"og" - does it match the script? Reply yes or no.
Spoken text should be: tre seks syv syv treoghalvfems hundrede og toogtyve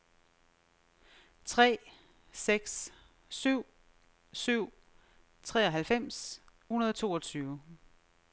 yes